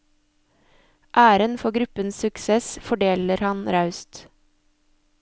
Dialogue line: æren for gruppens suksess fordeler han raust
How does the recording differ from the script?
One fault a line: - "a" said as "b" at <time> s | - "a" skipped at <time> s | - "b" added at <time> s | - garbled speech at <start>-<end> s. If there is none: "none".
none